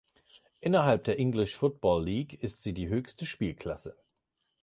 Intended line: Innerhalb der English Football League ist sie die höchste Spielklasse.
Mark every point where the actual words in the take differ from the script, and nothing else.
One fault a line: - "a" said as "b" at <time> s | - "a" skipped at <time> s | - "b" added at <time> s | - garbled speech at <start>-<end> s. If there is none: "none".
none